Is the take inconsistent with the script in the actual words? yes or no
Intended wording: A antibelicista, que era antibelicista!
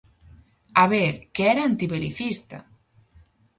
yes